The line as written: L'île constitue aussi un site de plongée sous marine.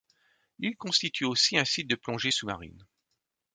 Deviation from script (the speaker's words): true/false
false